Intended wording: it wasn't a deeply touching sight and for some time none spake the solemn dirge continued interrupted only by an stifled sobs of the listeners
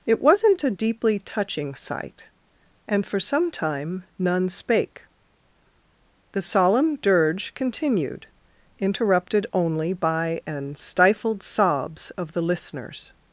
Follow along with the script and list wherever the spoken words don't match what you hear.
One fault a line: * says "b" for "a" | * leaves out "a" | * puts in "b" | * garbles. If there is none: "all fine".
all fine